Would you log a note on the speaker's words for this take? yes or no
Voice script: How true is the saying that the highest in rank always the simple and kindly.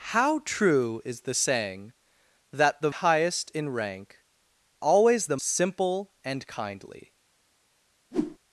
no